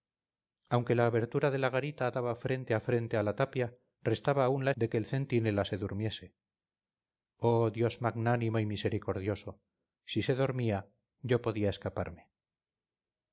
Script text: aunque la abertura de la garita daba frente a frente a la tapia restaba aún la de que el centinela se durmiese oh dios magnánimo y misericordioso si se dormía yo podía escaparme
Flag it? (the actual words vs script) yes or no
no